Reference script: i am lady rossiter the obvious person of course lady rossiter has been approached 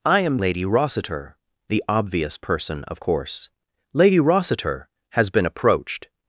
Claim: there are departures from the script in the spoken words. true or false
false